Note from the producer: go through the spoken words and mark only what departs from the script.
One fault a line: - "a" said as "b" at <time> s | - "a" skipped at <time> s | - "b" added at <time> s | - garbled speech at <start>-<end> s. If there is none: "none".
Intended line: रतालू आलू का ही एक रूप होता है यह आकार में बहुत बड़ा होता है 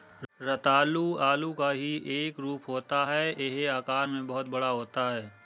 none